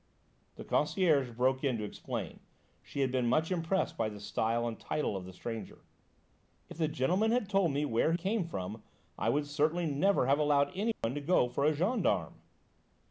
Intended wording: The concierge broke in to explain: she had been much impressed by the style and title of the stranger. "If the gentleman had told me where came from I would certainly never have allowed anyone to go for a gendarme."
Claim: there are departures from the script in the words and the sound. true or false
true